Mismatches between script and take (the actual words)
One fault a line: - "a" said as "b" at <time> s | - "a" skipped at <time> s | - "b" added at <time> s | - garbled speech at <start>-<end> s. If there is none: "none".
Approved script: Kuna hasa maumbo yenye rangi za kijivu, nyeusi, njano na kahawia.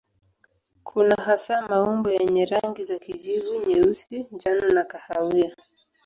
none